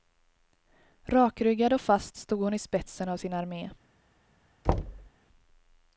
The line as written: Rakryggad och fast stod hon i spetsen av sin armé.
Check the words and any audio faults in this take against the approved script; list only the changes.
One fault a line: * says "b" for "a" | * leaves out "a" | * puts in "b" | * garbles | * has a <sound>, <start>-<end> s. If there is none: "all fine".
* has a thud, 4.6-5.1 s